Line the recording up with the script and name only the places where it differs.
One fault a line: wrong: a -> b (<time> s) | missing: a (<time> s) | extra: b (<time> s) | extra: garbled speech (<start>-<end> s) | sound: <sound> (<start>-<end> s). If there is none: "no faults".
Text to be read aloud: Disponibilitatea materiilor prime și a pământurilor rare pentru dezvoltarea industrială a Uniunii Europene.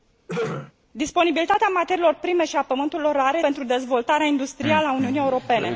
sound: throat clearing (0.3-0.7 s)